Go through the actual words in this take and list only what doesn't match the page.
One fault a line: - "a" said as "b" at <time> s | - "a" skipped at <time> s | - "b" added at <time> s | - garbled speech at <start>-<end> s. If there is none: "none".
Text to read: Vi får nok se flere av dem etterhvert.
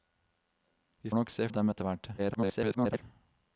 - "får" skipped at 1.1 s
- "flere" skipped at 1.5 s
- garbled speech at 2.2-3.0 s